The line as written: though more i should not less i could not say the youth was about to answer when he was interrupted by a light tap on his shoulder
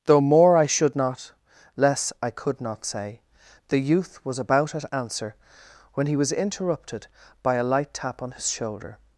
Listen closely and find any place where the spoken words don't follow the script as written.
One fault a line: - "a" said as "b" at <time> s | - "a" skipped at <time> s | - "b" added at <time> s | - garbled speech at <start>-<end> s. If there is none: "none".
- "to" said as "at" at 4.7 s